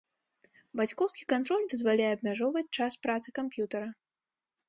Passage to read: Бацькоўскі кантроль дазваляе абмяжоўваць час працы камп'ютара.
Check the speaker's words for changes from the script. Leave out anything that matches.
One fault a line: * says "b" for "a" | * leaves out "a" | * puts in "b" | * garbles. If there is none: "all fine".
all fine